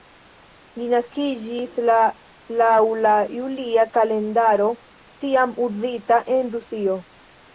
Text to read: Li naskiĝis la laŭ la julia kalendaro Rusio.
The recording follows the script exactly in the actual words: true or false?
false